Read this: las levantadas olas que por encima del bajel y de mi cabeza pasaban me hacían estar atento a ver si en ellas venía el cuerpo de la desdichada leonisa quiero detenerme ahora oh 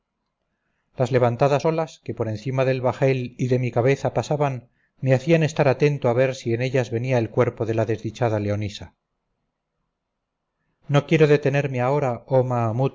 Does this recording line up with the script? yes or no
no